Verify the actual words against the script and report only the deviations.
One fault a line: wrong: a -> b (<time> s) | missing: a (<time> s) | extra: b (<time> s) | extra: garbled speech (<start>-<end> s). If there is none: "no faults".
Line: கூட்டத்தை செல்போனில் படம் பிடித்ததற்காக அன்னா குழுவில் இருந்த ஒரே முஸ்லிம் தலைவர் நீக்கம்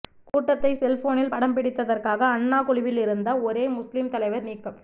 no faults